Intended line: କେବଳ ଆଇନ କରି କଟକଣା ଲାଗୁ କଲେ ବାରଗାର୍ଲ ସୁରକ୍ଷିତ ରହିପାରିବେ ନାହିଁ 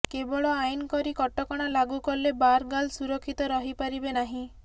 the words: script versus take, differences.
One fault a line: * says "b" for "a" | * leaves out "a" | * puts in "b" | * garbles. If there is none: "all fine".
all fine